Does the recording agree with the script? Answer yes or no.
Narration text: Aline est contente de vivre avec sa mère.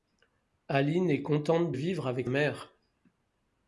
no